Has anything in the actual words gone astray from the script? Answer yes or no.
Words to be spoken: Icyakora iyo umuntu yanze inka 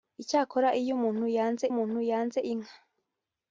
yes